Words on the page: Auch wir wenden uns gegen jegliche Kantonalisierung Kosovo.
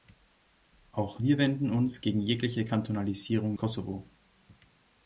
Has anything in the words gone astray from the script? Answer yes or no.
no